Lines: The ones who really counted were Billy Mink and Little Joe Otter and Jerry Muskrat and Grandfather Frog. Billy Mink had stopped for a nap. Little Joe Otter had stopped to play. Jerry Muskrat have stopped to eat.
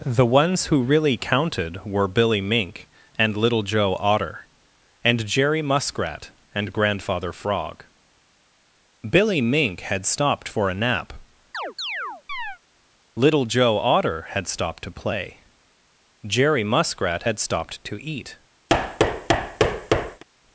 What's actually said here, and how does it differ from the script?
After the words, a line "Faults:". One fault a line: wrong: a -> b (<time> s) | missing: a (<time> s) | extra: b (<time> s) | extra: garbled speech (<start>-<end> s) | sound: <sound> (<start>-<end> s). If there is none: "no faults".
The ones who really counted were Billy Mink and Little Joe Otter and Jerry Muskrat and Grandfather Frog. Billy Mink had stopped for a nap. Little Joe Otter had stopped to play. Jerry Muskrat had stopped to eat.
Faults:
sound: chirp (11.5-12.6 s)
wrong: have -> had (17.2 s)
sound: thud (18.7-20.2 s)